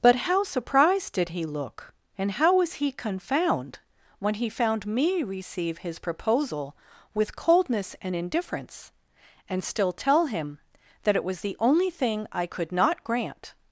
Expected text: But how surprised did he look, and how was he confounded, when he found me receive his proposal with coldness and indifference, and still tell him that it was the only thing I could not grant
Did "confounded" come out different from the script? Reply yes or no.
yes